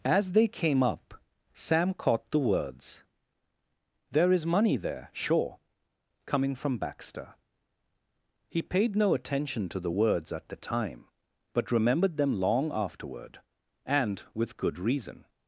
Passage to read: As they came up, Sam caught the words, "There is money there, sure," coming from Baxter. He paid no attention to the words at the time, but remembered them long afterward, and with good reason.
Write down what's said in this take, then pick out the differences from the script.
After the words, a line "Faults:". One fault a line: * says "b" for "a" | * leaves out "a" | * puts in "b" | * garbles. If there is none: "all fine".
As they came up, Sam caught the words, "There is money there, sure," coming from Baxter. He paid no attention to the words at the time, but remembered them long afterward, and with good reason.
Faults:
all fine